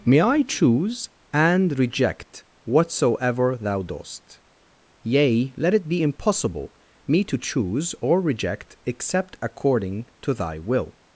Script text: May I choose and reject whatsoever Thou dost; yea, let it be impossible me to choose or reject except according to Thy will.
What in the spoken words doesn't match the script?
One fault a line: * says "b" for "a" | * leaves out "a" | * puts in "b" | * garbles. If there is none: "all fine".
all fine